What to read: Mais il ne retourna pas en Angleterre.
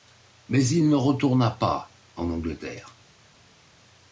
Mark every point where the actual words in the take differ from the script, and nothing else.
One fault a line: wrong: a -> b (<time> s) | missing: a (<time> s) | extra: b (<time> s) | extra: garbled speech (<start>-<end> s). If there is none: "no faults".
no faults